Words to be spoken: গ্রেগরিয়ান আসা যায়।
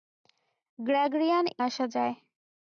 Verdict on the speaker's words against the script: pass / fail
pass